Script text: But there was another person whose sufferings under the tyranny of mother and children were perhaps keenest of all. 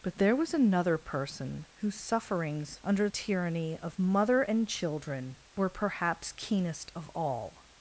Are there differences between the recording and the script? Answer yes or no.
yes